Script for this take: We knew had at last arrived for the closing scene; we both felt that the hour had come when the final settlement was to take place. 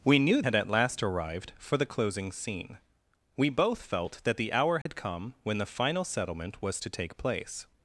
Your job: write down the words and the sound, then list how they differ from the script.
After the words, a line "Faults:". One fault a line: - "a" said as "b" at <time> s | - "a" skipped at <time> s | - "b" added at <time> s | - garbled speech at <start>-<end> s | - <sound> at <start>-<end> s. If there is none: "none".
We knew had at last arrived for the closing scene; we both felt that the hour had come when the final settlement was to take place.
Faults:
- dropout at 4.8-4.9 s